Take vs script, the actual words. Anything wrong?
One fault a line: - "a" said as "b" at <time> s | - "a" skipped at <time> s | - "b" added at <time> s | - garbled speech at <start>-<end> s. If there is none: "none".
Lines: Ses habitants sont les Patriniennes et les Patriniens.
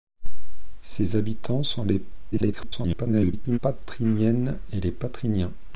- garbled speech at 2.3-3.6 s